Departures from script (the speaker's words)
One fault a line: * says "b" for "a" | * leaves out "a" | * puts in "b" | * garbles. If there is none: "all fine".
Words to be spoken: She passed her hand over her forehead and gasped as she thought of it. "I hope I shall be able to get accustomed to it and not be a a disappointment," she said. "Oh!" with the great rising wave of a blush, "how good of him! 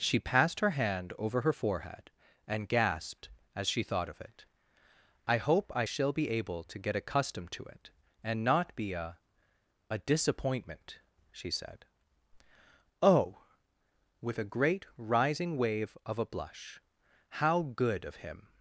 * says "a" for "the"